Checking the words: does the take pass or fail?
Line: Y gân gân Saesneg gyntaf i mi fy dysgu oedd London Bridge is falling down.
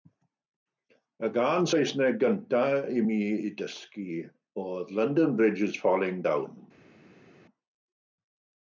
fail